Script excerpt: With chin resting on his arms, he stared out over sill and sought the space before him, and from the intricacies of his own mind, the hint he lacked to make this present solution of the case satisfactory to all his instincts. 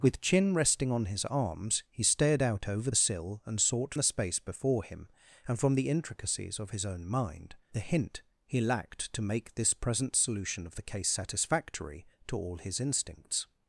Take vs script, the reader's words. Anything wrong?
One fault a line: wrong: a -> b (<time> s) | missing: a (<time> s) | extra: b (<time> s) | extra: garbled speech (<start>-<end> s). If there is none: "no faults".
no faults